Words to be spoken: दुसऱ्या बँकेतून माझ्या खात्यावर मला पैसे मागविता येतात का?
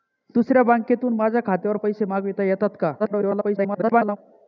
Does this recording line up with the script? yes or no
no